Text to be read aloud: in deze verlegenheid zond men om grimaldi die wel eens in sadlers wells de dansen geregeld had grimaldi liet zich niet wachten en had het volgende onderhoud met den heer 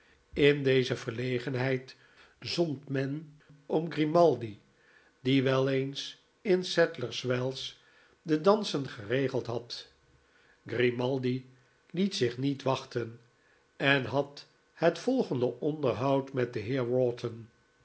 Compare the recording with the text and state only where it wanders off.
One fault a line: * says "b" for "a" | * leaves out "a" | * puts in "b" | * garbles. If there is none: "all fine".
all fine